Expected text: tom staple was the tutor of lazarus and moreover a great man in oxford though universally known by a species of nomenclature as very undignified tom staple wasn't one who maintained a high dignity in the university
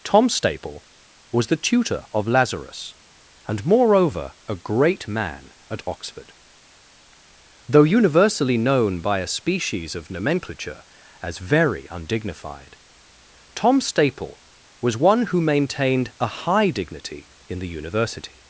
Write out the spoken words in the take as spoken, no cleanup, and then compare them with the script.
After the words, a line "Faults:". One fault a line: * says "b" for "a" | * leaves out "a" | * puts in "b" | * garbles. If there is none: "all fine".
tom staple was the tutor of lazarus and moreover a great man at oxford though universally known by a species of nomenclature as very undignified tom staple was one who maintained a high dignity in the university
Faults:
* says "at" for "in"
* says "was" for "wasn't"